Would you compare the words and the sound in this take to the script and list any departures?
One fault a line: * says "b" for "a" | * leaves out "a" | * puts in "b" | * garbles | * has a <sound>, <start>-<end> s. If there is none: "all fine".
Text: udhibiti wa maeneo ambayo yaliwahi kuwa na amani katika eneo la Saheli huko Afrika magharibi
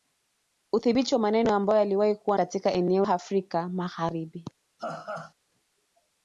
* leaves out "na amani"
* leaves out "la Saheli huko"
* has a laugh, 4.8-5.3 s